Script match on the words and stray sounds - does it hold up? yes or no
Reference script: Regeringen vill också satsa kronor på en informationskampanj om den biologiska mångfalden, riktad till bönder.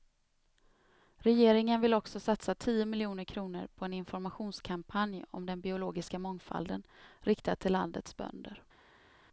no